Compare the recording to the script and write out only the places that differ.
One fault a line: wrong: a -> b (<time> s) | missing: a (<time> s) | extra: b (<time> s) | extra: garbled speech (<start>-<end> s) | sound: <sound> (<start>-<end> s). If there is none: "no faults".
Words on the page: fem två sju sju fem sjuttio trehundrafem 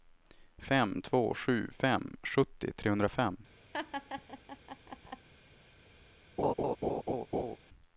missing: sju (1.7 s)
sound: laugh (3.7-5.3 s)
sound: laugh (6.4-7.6 s)